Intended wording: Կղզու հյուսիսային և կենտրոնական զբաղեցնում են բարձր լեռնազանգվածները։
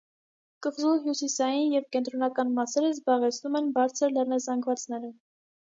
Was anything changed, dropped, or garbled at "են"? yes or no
no